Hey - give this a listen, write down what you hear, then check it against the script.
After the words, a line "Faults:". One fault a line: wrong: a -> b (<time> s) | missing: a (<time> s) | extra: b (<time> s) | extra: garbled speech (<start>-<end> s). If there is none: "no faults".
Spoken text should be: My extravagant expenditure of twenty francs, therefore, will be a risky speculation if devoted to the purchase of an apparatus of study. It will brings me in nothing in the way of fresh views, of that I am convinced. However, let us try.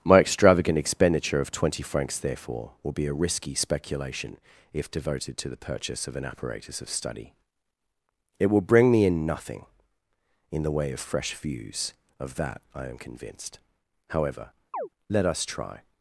My extravagant expenditure of twenty francs, therefore, will be a risky speculation if devoted to the purchase of an apparatus of study. It will bring me in nothing in the way of fresh views, of that I am convinced. However, let us try.
Faults:
wrong: brings -> bring (8.6 s)